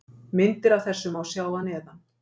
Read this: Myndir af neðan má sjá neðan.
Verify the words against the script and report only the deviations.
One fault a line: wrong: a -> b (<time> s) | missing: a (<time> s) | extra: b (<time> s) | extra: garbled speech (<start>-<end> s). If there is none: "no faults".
wrong: neðan -> þessu (0.9 s)
extra: að (1.5 s)